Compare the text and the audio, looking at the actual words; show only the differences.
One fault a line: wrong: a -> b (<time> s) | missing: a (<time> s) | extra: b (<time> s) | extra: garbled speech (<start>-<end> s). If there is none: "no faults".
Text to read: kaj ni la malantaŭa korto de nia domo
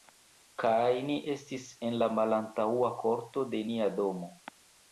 extra: estis en (1.3 s)